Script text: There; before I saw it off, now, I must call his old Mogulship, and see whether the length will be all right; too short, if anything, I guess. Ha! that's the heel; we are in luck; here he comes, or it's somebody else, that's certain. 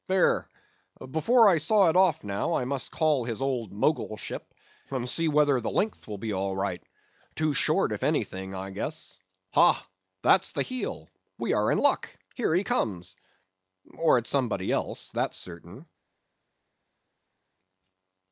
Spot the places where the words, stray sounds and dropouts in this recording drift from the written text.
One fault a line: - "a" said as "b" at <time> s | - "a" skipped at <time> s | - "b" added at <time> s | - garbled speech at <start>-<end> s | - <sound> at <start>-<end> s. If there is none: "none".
none